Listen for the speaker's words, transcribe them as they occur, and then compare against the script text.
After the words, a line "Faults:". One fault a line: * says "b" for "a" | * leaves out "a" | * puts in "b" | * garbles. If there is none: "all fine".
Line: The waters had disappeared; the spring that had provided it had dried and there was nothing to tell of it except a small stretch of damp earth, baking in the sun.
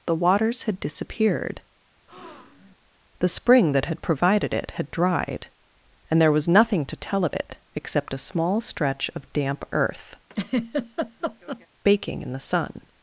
The waters had disappeared; the spring that had provided it had dried and there was nothing to tell of it except a small stretch of damp earth, baking in the sun.
Faults:
all fine